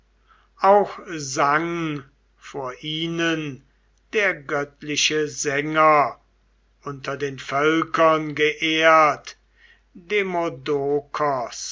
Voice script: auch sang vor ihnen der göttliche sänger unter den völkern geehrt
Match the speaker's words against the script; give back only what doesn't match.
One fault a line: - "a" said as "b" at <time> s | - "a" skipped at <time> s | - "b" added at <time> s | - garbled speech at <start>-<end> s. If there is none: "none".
none